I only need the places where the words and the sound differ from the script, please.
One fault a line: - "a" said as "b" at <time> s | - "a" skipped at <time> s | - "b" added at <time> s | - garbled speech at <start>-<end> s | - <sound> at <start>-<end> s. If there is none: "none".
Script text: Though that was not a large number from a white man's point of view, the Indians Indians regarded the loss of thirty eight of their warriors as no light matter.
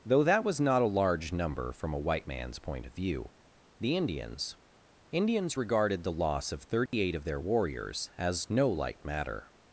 - dropout at 6.9-6.9 s